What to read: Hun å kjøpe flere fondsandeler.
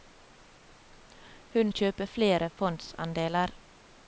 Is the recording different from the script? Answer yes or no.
no